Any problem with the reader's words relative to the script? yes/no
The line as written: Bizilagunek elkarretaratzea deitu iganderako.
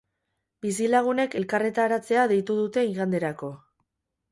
yes